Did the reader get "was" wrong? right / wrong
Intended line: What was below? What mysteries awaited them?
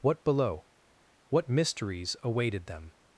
wrong